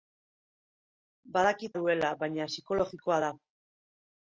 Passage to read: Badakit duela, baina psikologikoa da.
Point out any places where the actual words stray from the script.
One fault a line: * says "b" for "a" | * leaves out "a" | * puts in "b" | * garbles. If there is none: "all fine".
all fine